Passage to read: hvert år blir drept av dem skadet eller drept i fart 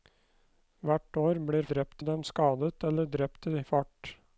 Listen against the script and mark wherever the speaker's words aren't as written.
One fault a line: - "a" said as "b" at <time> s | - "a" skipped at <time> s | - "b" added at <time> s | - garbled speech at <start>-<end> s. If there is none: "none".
none